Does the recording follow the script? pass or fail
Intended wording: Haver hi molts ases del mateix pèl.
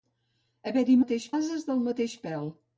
fail